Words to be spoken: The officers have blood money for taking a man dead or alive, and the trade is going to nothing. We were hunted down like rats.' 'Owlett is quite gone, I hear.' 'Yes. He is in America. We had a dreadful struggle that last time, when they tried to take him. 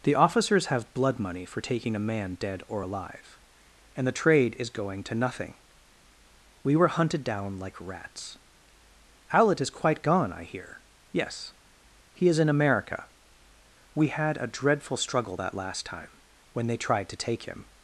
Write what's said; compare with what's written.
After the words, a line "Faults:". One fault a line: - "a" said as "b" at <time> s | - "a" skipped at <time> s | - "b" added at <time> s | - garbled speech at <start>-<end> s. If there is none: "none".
The officers have blood money for taking a man dead or alive, and the trade is going to nothing. We were hunted down like rats.' 'Owlett is quite gone, I hear.' 'Yes. He is in America. We had a dreadful struggle that last time, when they tried to take him.
Faults:
none